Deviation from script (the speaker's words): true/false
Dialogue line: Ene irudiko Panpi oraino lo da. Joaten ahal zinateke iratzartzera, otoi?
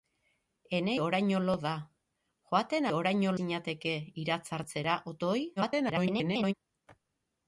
true